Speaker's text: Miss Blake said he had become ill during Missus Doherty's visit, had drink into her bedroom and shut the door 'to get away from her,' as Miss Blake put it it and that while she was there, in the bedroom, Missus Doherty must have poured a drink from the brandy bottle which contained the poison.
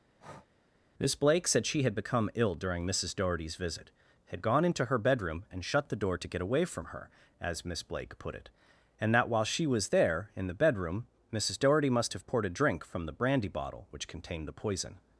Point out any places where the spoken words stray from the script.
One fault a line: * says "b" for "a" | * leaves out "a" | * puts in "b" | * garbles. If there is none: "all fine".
* says "she" for "he"
* says "gone" for "drink"
* leaves out "it"